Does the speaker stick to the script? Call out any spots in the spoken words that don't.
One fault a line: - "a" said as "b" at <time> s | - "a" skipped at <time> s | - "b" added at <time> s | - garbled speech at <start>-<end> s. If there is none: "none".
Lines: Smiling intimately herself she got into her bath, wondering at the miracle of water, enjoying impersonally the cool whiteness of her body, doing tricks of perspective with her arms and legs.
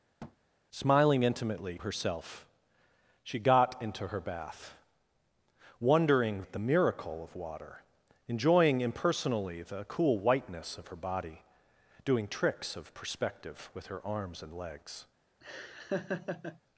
none